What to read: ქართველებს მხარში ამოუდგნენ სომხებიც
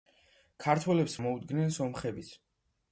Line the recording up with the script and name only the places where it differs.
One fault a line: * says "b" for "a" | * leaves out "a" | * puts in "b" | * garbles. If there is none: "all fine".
* leaves out "მხარში"